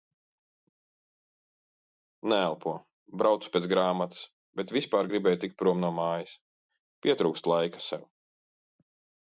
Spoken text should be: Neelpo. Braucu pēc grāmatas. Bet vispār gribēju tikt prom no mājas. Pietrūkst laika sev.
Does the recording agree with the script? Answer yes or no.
yes